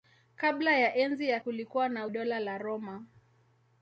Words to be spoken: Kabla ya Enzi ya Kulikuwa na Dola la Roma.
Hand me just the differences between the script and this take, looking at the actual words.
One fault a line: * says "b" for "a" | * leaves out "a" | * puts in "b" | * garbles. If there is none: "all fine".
all fine